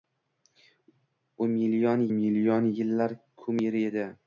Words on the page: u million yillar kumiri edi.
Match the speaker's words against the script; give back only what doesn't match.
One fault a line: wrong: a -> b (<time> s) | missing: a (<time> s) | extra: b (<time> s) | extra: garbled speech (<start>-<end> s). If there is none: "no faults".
extra: million (2.1 s)